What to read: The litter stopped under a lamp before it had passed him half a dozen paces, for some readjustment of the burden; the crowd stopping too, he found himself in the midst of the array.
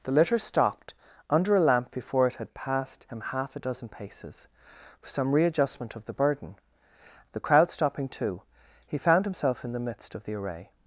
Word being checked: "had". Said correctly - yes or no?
yes